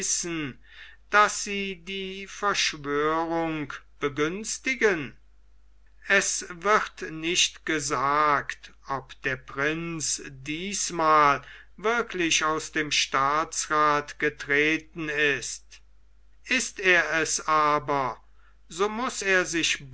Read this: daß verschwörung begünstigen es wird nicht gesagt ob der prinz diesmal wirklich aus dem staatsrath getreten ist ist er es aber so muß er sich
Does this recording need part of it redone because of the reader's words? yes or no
yes